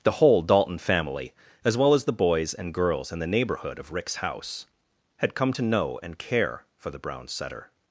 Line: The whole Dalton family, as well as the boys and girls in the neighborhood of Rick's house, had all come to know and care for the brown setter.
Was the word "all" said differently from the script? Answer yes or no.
yes